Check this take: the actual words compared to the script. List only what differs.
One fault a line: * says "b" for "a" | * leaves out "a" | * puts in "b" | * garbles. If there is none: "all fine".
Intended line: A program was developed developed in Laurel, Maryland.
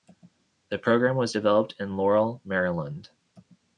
* says "The" for "A"
* leaves out "developed"